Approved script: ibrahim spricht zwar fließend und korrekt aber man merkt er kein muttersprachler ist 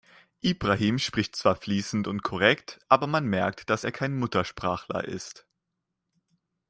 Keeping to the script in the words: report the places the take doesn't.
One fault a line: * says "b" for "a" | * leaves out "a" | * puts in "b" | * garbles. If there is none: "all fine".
* puts in "dass"